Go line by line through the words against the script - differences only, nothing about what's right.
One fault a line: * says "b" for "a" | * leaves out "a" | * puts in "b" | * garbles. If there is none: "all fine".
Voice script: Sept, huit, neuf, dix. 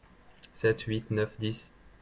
all fine